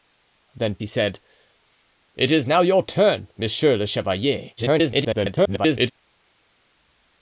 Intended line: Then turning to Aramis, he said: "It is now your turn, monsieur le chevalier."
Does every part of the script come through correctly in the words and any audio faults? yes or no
no